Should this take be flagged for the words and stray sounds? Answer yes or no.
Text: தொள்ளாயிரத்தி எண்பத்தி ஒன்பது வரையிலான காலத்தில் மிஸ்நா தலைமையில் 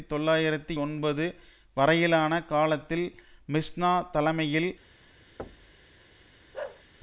yes